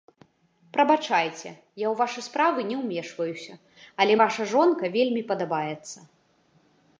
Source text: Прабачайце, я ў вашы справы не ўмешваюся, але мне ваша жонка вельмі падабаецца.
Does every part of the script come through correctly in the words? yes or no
no